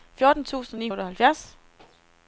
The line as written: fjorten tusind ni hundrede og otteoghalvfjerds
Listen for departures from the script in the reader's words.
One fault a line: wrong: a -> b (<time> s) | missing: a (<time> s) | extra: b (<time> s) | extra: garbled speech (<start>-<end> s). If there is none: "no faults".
missing: hundrede (0.9 s)